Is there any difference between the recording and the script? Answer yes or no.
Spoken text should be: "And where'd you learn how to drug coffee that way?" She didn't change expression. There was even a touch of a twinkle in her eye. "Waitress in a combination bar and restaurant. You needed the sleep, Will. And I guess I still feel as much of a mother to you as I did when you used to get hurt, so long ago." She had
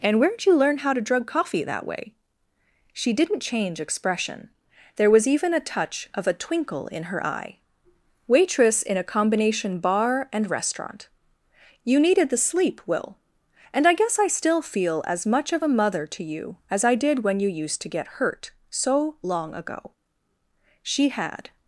no